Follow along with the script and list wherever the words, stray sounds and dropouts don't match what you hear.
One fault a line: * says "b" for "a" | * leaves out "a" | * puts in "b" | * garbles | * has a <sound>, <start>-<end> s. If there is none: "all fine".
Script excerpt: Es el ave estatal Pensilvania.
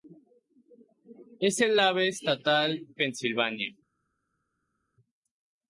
all fine